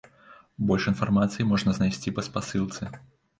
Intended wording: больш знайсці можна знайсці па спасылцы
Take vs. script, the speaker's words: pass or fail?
fail